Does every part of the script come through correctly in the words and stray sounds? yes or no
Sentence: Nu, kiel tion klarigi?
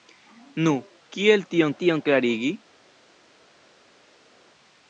no